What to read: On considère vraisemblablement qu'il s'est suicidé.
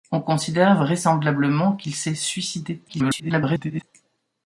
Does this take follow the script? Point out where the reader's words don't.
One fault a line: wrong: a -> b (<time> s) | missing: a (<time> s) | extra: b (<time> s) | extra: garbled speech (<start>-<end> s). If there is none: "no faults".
extra: garbled speech (2.9-3.8 s)